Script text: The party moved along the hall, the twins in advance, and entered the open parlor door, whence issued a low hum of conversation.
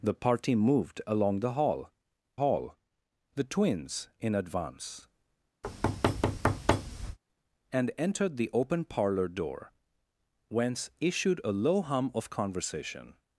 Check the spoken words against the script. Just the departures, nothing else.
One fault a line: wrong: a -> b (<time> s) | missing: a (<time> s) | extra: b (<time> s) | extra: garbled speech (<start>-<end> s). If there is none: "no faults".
extra: hall (2.4 s)